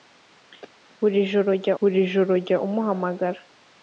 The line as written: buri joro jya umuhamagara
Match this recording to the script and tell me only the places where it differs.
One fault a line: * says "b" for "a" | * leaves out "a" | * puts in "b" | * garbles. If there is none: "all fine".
* puts in "buri joro jya"